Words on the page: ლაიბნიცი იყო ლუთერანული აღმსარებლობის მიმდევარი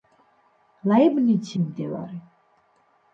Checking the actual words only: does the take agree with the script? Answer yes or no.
no